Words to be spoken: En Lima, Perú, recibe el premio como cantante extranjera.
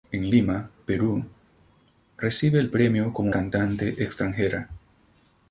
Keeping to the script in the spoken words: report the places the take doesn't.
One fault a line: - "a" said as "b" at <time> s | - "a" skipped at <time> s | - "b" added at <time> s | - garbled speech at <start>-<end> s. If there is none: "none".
none